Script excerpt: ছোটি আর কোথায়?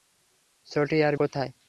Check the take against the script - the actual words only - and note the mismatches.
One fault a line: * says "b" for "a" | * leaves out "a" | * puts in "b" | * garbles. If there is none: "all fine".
all fine